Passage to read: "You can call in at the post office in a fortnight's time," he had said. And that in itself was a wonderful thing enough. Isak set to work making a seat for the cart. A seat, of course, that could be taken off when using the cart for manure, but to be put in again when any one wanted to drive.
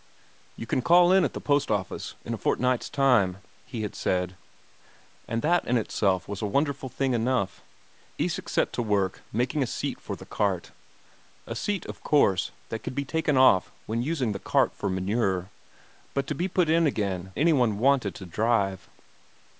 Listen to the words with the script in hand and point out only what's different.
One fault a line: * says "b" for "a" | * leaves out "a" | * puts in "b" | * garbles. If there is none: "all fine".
* leaves out "when"